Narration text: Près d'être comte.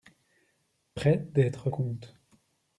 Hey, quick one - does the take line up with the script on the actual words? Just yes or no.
yes